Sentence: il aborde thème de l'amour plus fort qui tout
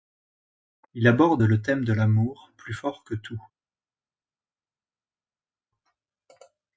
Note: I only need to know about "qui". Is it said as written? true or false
false